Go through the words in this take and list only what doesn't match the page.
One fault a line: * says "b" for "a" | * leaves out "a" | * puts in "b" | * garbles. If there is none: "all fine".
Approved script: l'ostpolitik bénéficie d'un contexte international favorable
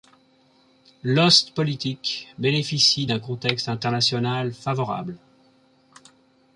all fine